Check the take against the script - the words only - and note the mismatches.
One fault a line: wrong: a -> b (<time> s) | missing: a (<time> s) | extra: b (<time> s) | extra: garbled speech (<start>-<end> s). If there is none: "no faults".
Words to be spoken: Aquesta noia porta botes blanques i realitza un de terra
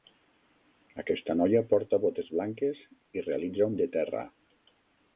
no faults